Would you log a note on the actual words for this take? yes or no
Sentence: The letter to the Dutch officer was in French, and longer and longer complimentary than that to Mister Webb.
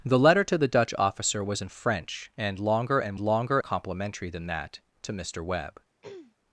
no